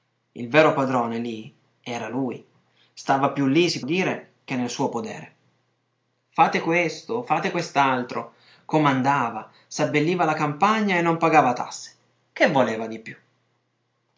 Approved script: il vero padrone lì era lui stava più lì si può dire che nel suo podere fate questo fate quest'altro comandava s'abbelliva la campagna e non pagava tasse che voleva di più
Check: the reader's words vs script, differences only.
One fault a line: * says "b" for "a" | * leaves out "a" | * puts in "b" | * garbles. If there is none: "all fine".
* leaves out "può"